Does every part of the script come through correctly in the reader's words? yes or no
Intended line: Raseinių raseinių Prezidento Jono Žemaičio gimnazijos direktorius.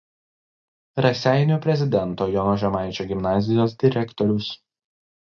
no